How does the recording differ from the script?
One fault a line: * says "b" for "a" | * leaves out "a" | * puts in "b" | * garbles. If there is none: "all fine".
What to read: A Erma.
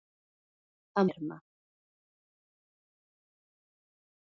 all fine